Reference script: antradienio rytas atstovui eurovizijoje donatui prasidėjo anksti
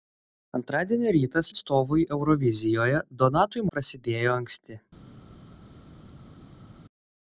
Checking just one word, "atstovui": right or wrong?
right